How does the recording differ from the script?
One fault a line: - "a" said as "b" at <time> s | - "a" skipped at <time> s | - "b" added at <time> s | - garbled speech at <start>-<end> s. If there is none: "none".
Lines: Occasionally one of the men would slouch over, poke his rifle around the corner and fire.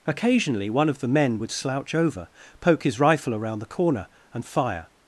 none